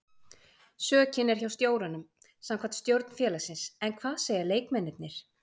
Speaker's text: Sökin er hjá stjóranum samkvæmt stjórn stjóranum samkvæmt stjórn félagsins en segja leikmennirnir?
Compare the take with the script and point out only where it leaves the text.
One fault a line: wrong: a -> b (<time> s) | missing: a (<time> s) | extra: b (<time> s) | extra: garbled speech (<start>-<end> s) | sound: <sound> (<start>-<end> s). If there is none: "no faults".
missing: stjóranum samkvæmt stjórn (3.1 s)
extra: hvað (4.0 s)